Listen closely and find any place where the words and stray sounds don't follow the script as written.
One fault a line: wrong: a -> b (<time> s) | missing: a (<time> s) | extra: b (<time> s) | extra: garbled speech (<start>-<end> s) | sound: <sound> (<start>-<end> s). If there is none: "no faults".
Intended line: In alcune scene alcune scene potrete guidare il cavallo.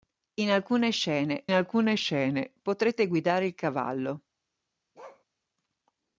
sound: bark (4.9-5.2 s)